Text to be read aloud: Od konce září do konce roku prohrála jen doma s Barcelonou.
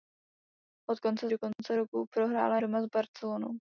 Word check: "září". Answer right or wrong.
wrong